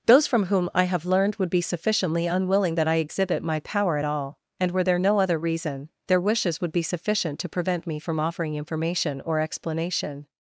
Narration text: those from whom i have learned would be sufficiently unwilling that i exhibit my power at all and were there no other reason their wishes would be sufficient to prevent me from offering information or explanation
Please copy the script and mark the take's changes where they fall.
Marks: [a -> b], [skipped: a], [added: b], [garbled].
those from whom i have learned would be sufficiently unwilling that i exhibit my power at all and were there no other reason their wishes would be sufficient to prevent me from offering information or explanation